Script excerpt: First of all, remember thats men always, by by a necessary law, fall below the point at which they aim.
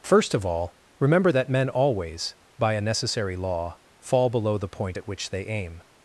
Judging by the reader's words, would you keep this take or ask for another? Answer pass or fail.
fail